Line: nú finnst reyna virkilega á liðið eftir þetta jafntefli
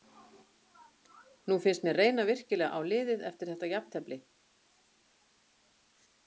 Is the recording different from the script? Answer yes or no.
yes